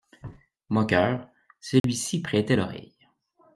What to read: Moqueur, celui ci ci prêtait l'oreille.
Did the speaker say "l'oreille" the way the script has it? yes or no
yes